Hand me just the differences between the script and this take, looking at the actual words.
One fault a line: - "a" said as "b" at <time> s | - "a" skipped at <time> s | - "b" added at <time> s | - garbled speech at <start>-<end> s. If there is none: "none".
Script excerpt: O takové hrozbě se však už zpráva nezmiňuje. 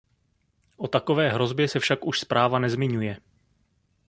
none